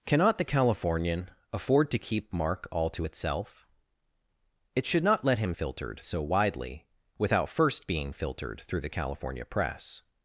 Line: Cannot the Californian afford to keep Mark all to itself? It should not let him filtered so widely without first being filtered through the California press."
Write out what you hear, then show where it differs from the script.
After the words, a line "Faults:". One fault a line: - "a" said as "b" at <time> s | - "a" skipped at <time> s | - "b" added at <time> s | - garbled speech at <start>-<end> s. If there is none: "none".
Cannot the Californian afford to keep Mark all to itself? It should not let him filtered so widely without first being filtered through the California press."
Faults:
none